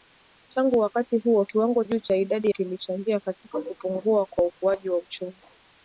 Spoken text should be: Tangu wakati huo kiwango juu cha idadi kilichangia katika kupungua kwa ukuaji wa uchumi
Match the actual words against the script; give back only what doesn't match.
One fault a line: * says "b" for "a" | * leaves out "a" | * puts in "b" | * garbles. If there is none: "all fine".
all fine